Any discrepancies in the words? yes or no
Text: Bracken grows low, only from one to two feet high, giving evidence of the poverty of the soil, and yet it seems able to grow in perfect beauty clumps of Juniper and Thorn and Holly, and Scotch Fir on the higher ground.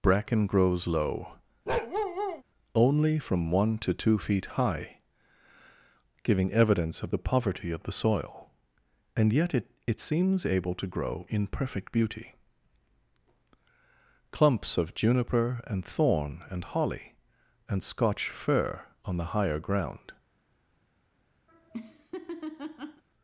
yes